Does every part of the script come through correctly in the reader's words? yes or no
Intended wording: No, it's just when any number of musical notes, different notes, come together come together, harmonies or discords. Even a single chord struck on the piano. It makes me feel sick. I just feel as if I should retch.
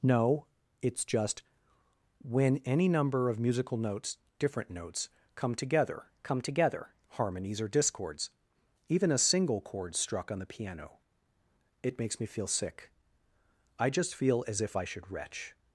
yes